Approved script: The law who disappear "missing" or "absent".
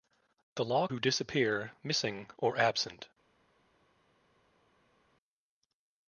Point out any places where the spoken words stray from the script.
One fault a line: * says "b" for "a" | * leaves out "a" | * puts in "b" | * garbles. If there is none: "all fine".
all fine